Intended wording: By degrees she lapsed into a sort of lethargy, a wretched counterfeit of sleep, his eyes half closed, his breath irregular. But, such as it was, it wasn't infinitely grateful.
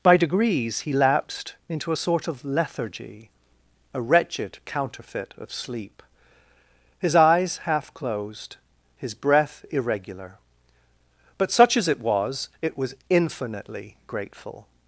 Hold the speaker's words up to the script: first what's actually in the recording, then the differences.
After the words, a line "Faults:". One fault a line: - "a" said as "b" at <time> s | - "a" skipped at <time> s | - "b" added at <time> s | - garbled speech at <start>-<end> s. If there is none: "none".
By degrees he lapsed into a sort of lethargy, a wretched counterfeit of sleep, his eyes half closed, his breath irregular. But, such as it was, it was infinitely grateful.
Faults:
- "she" said as "he" at 0.8 s
- "wasn't" said as "was" at 12.8 s